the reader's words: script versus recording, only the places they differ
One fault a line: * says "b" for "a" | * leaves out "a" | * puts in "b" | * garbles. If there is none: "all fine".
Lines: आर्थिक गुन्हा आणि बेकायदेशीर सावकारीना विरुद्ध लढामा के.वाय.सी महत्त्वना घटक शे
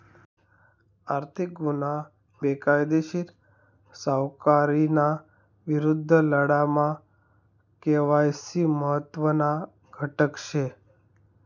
* leaves out "आणि"